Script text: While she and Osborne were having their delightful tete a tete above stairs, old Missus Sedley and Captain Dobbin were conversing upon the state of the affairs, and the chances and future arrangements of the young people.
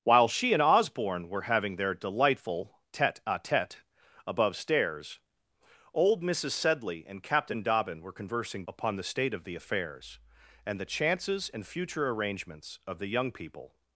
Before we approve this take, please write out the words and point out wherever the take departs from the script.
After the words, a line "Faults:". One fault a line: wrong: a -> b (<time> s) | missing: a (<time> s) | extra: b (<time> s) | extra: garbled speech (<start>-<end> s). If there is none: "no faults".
While she and Osborne were having their delightful tete a tete above stairs, old Missus Sedley and Captain Dobbin were conversing upon the state of the affairs, and the chances and future arrangements of the young people.
Faults:
no faults